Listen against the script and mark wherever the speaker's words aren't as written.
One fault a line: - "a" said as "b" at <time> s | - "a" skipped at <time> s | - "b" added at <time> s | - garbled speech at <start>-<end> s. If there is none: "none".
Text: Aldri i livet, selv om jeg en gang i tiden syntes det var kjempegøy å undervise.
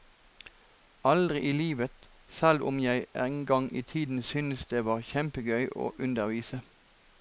none